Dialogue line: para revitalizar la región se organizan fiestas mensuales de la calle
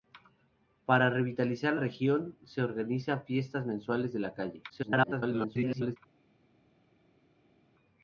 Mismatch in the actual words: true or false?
true